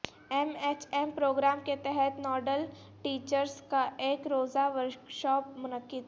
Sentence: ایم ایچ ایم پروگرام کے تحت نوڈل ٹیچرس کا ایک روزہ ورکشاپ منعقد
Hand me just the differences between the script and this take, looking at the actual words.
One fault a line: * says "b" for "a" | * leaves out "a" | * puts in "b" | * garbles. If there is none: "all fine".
all fine